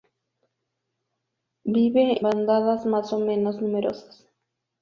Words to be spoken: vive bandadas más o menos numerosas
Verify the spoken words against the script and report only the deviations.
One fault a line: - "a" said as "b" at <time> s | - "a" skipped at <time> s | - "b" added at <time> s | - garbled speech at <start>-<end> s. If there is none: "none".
none